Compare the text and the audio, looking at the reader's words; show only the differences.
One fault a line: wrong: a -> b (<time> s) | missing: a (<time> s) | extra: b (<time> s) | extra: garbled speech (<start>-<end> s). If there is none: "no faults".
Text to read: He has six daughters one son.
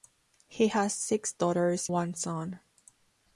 no faults